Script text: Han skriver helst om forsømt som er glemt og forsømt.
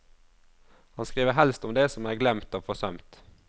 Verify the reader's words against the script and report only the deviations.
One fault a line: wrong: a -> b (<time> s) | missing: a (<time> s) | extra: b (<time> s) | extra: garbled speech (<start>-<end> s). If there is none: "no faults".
wrong: forsømt -> det (1.8 s)